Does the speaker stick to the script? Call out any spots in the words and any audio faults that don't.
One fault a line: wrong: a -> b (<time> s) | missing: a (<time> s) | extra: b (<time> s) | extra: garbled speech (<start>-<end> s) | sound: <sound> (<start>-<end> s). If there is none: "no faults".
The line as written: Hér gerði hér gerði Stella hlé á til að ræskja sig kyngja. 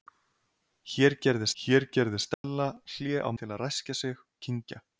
sound: dropout (2.3-2.4 s)